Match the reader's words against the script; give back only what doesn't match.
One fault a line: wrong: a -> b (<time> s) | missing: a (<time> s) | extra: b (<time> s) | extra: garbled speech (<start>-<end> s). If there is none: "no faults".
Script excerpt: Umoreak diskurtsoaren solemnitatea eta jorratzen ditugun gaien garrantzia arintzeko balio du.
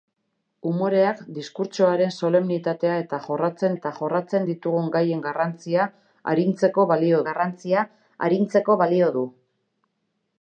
extra: eta jorratzen (3.8 s)
extra: garrantzia arintzeko balio (7.3 s)